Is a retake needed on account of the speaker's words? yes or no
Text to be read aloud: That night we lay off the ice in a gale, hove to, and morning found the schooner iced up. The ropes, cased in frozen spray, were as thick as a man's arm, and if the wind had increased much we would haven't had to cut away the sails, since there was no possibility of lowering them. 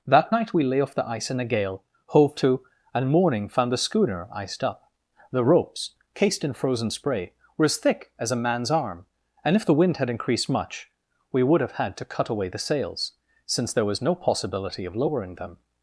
yes